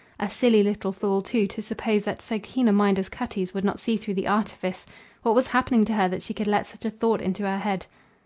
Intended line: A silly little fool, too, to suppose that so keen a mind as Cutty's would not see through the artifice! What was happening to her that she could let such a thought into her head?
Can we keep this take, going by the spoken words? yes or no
yes